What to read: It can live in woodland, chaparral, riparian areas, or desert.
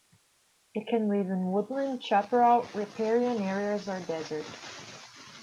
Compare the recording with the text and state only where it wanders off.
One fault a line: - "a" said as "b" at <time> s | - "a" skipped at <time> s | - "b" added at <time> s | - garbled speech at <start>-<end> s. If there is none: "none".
none